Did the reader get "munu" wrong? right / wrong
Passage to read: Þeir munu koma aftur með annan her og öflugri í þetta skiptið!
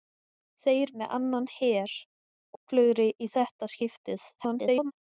wrong